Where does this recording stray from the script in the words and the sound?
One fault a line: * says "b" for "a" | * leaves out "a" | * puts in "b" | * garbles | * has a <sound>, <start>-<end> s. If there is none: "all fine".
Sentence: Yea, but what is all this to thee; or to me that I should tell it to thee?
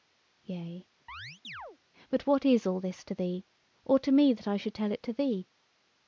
* has a chirp, 1.1-1.8 s